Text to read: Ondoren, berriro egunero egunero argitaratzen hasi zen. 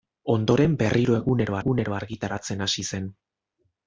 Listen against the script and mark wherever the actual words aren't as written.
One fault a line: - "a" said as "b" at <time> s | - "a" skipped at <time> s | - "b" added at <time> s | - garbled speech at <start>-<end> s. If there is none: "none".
none